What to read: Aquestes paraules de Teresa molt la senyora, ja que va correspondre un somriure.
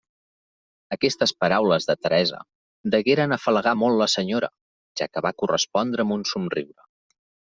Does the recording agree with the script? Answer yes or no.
no